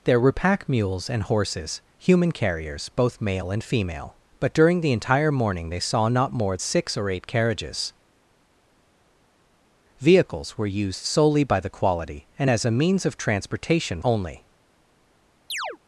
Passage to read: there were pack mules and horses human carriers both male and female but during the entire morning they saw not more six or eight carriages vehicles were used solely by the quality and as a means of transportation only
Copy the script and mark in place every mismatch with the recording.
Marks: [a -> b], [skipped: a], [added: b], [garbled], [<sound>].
there were pack mules and horses human carriers both male and female but during the entire morning they saw not more six or eight carriages vehicles were used solely by the quality and as a means of transportation only [chirp]